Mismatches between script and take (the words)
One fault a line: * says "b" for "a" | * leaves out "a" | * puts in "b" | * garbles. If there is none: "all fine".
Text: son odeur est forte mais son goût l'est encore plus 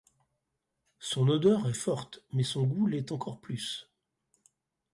all fine